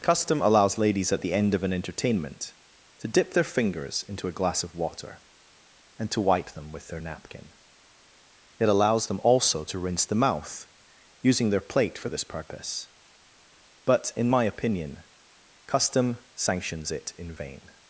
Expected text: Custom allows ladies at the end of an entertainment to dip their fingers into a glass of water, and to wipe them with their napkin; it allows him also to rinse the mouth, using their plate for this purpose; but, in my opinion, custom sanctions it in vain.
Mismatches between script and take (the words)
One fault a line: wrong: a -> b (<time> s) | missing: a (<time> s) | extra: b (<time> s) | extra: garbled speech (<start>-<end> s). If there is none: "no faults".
wrong: him -> them (9.1 s)